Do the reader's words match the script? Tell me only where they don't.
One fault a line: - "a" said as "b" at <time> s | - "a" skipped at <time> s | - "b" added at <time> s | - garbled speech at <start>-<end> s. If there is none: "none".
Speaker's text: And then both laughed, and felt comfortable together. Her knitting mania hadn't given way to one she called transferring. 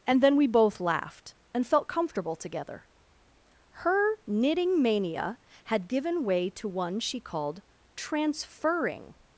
- "we" added at 0.3 s
- "hadn't" said as "had" at 5.7 s